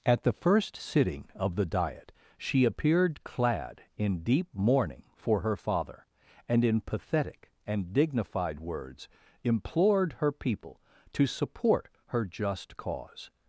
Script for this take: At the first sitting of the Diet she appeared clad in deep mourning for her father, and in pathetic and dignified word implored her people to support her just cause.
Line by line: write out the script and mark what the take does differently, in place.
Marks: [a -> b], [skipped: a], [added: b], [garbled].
At the first sitting of the Diet she appeared clad in deep mourning for her father, and in pathetic and dignified [word -> words] implored her people to support her just cause.